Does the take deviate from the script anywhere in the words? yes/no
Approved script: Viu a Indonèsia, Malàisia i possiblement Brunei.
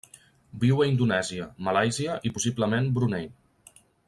no